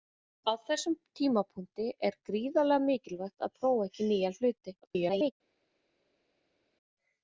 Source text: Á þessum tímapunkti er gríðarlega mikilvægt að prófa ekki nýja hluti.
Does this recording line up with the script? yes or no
no